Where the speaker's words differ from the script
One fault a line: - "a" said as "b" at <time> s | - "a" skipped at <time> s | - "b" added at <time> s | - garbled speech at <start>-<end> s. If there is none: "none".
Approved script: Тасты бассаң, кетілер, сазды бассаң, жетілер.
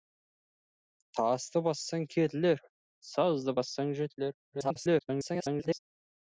- garbled speech at 4.5-5.8 s